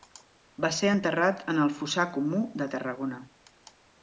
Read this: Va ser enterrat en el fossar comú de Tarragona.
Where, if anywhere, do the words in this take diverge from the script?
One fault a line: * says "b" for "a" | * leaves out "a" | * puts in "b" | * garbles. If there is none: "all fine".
all fine